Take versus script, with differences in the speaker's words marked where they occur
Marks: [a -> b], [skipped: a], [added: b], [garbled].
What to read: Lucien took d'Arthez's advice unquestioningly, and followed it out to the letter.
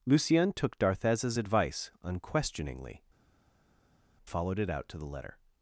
Lucien took d'Arthez's advice unquestioningly, [skipped: and] followed it out to the letter.